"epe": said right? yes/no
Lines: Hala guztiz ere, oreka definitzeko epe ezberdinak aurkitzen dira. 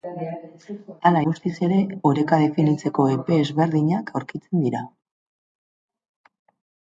yes